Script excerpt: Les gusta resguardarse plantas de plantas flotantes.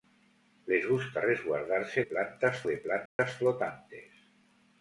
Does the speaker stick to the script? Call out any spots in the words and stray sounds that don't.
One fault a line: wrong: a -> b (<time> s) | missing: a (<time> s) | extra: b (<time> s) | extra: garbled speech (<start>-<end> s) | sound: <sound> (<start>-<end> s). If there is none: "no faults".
sound: dropout (3.1-3.2 s)